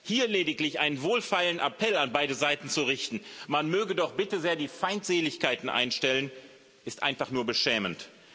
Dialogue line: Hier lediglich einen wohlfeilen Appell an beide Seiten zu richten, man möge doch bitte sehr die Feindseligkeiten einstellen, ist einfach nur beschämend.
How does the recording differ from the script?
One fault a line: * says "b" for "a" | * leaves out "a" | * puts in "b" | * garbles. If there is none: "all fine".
all fine